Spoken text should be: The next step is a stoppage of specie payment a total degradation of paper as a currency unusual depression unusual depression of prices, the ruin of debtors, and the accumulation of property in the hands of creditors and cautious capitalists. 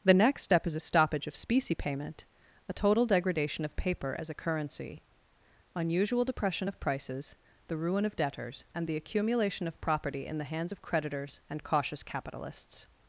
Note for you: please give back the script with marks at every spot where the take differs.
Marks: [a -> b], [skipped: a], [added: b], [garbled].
The next step is a stoppage of specie payment a total degradation of paper as a currency unusual depression [skipped: unusual depression] of prices, the ruin of debtors, and the accumulation of property in the hands of creditors and cautious capitalists.